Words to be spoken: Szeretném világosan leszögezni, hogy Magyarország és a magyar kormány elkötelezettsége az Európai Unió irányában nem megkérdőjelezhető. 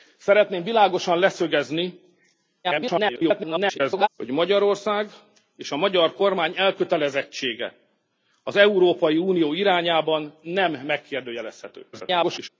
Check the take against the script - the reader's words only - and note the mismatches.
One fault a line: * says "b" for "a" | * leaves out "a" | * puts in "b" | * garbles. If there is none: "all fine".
* garbles
* garbles